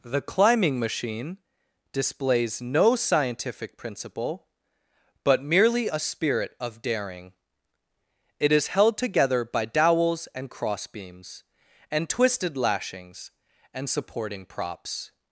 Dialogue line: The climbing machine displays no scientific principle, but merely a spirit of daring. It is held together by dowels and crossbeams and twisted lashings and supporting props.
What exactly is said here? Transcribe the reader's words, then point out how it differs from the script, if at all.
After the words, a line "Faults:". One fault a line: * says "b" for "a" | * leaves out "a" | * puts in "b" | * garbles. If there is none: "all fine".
The climbing machine displays no scientific principle, but merely a spirit of daring. It is held together by dowels and crossbeams and twisted lashings and supporting props.
Faults:
all fine